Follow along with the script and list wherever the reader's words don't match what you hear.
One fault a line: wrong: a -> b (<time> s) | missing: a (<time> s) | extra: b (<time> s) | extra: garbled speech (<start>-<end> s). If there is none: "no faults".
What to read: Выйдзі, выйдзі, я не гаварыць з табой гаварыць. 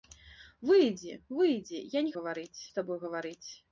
no faults